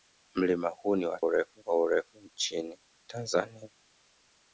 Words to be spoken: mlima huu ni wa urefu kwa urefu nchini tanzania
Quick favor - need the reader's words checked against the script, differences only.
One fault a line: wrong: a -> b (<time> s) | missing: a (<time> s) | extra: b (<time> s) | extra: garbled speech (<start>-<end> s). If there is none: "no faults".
no faults